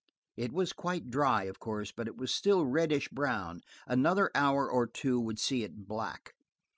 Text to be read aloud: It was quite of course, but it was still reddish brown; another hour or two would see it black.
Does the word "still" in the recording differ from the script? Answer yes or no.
no